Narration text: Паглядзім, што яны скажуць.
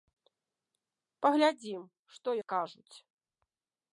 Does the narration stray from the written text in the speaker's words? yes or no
yes